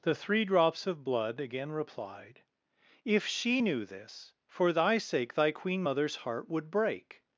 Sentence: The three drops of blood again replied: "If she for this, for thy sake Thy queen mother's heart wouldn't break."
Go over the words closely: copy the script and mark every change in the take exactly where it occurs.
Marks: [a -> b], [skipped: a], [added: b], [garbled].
The three drops of blood again replied: "If she [for -> knew] this, for thy sake Thy queen mother's heart [wouldn't -> would] break."